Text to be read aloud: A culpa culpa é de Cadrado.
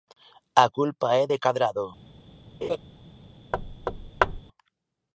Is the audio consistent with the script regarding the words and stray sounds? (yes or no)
no